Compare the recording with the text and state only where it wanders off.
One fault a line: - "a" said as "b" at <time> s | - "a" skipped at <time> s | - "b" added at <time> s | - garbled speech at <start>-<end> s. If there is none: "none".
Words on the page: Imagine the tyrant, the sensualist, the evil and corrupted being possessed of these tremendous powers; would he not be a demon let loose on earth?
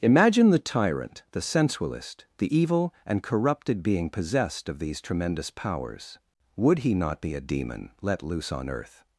none